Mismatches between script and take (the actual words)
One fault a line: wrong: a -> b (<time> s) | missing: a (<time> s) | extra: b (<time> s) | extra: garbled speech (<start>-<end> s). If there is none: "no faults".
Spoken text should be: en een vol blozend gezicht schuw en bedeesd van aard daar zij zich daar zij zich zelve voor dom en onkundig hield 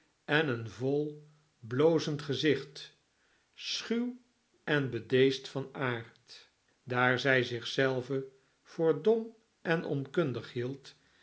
missing: daar zij zich (7.7 s)